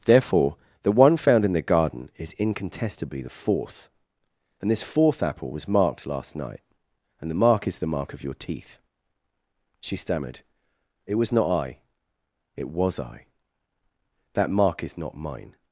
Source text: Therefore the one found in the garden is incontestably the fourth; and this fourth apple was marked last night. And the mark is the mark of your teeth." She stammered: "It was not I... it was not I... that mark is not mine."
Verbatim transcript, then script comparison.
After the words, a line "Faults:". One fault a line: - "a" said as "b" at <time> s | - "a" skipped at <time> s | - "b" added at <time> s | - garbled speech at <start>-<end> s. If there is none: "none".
Therefore the one found in the garden is incontestably the fourth; and this fourth apple was marked last night. And the mark is the mark of your teeth." She stammered: "It was not I... it was I... that mark is not mine."
Faults:
- "not" skipped at 13.0 s